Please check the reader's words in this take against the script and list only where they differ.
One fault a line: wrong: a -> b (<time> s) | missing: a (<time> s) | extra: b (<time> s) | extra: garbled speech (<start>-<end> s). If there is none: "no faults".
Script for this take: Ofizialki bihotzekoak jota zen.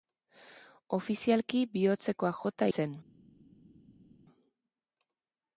no faults